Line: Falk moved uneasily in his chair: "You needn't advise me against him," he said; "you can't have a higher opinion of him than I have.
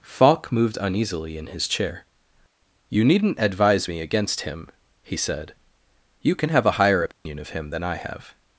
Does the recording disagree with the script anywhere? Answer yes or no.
yes